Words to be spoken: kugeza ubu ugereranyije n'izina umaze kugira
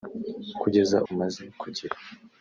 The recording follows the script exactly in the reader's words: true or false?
false